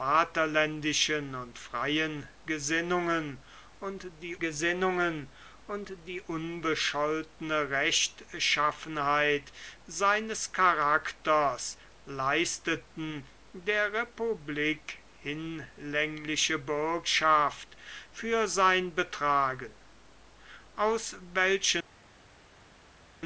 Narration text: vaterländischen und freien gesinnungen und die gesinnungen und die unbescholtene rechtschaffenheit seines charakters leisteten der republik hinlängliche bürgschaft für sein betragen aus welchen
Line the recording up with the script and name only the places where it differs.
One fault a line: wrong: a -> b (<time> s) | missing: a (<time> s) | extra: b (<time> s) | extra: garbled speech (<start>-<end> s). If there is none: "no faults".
no faults